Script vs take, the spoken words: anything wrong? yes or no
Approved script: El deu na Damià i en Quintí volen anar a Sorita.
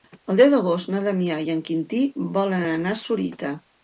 yes